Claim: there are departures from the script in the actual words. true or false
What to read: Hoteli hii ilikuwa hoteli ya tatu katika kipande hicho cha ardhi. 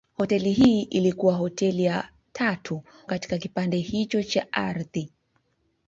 false